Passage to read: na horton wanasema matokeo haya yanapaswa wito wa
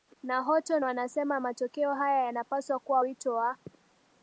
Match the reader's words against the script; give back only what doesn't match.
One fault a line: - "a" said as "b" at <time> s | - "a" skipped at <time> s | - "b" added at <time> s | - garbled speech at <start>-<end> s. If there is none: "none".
- "kuwa" added at 2.8 s